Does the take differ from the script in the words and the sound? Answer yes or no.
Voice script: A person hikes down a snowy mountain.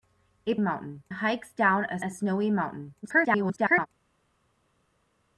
yes